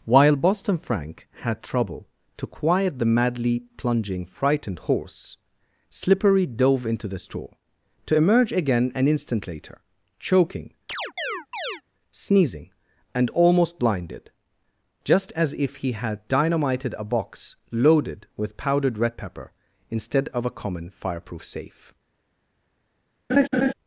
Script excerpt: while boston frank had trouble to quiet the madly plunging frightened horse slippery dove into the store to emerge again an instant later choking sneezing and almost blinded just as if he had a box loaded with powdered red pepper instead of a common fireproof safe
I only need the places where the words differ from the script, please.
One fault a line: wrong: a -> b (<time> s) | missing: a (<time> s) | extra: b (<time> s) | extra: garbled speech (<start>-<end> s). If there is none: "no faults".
extra: dynamited (16.3 s)